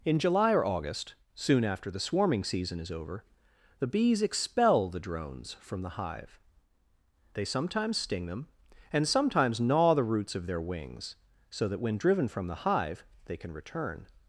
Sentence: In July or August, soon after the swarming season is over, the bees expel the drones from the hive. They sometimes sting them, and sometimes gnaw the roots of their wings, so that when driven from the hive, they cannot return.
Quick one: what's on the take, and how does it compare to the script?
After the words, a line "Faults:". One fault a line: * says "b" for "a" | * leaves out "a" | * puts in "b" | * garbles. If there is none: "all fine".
In July or August, soon after the swarming season is over, the bees expel the drones from the hive. They sometimes sting them, and sometimes gnaw the roots of their wings, so that when driven from the hive, they can return.
Faults:
* says "can" for "cannot"